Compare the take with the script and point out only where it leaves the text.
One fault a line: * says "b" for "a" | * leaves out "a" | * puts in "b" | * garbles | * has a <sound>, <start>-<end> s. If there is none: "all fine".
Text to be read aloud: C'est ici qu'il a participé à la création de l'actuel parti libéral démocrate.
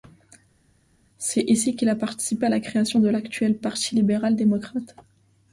all fine